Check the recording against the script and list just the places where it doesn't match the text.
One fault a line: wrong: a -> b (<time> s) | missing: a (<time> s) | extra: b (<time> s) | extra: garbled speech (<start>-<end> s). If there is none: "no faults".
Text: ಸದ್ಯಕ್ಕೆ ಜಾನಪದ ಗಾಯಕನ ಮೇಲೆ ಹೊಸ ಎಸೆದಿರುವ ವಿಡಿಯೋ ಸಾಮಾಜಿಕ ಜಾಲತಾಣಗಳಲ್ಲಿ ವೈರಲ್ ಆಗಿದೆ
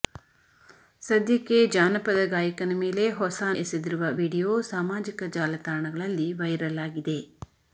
no faults